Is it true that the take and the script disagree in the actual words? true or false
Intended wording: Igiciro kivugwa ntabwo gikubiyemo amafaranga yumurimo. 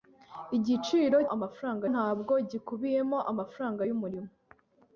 true